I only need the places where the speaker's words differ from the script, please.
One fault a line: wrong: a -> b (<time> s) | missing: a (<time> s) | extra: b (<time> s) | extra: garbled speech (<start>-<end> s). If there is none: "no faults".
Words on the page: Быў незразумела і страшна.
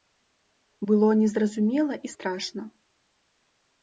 wrong: Быў -> Было (0.9 s)